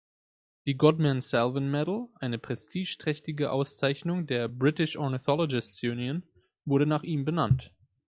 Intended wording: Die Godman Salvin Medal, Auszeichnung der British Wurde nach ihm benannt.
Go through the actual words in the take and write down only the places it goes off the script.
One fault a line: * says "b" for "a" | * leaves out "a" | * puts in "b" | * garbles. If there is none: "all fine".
* puts in "eine prestigeträchtige"
* puts in "Ornithologists Union"